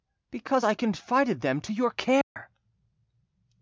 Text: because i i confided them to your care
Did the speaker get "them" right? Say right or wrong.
right